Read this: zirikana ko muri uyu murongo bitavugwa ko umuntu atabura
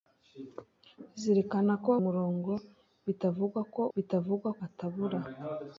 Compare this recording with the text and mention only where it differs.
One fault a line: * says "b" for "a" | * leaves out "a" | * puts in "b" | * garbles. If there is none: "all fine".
* leaves out "muri uyu"
* says "bitavugwa" for "umuntu"